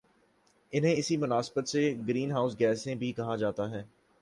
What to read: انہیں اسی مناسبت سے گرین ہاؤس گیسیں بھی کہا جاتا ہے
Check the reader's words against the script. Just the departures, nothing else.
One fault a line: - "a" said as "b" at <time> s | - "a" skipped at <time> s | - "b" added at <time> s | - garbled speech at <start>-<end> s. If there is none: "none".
none